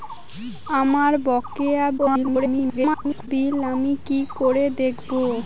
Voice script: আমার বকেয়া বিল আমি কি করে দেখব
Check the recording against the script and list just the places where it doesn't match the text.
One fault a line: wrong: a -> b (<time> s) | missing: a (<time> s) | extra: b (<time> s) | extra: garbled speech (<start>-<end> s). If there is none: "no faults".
extra: garbled speech (2.0-3.3 s)